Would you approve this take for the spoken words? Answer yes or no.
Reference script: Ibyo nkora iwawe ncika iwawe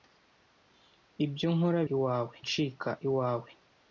yes